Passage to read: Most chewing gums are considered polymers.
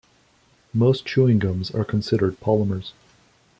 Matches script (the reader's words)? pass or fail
pass